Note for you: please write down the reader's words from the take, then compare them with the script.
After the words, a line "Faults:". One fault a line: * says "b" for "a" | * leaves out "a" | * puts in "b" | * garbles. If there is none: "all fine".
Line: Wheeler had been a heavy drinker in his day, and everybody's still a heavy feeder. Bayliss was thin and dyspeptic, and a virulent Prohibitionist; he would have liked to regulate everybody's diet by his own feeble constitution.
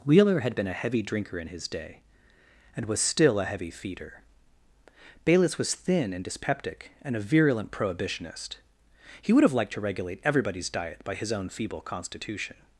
Wheeler had been a heavy drinker in his day, and was still a heavy feeder. Bayliss was thin and dyspeptic, and a virulent Prohibitionist; he would have liked to regulate everybody's diet by his own feeble constitution.
Faults:
* says "was" for "everybody's"